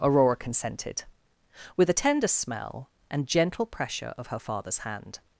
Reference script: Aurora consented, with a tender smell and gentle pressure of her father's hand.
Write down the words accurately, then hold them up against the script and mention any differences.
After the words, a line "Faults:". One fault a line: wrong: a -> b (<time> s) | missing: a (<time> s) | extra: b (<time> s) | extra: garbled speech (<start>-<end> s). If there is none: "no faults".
Aurora consented, with a tender smell and gentle pressure of her father's hand.
Faults:
no faults